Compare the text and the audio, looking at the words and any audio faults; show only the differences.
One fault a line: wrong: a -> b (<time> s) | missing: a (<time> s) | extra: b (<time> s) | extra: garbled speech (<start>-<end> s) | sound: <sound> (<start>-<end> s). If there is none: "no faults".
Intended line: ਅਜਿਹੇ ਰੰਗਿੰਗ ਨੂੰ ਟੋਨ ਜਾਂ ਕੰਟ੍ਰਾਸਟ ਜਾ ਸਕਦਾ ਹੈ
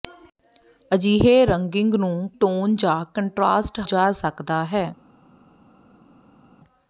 no faults